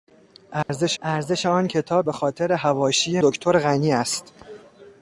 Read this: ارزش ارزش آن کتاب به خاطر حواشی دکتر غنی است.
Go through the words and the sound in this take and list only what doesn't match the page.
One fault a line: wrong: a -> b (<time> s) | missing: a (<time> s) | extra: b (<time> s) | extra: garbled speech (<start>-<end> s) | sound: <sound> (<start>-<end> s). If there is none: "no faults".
sound: dropout (0.6-0.7 s)